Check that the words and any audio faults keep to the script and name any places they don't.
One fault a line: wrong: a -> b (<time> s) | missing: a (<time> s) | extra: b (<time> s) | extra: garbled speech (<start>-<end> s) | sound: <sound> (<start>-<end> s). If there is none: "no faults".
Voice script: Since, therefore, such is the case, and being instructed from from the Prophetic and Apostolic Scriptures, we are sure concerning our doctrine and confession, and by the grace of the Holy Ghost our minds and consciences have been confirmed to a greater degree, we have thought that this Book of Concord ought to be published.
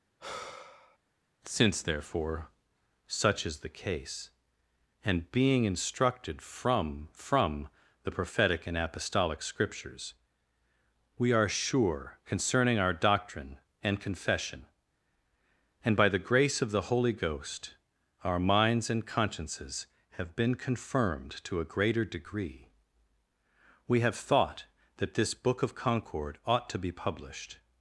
sound: sigh (0.2-1.0 s)